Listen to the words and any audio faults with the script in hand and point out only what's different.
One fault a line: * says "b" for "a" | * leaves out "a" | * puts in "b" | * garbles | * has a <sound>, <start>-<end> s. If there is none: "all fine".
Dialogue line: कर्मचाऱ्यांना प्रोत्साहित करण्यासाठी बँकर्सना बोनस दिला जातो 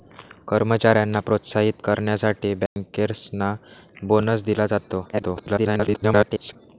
* has a dropout, 2.7-2.8 s
* garbles